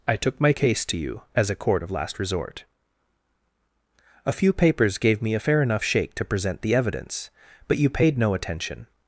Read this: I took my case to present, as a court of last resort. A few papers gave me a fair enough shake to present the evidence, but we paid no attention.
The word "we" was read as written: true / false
false